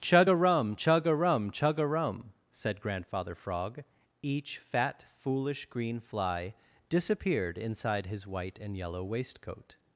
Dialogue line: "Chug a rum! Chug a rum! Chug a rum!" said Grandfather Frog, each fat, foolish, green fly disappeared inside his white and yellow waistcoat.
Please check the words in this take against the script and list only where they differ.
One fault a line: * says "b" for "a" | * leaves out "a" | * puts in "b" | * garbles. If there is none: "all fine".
all fine